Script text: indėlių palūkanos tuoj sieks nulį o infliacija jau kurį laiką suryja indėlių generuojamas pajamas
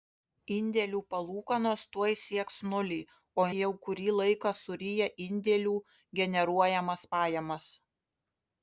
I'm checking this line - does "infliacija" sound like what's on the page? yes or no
no